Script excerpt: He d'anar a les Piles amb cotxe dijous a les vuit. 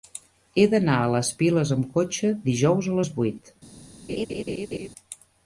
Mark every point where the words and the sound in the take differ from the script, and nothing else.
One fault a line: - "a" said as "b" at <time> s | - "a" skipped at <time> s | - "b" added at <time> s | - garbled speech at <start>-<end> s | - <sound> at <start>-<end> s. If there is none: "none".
- laugh at 4.1-4.9 s